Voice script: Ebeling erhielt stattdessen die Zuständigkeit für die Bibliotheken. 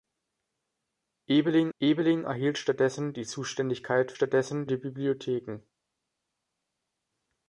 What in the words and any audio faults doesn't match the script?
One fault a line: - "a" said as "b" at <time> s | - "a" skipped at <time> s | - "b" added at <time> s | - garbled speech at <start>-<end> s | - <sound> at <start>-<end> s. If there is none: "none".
- "ebeling" added at 1.8 s
- "für" said as "stattdessen" at 4.1 s